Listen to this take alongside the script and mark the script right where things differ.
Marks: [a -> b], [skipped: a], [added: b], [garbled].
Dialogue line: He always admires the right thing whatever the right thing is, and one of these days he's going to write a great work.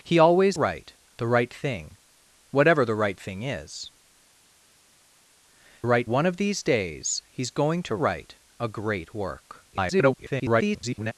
He always [admires -> write] the right thing whatever the right thing is, [and -> right] one of these days he's going to write a great work. [garbled]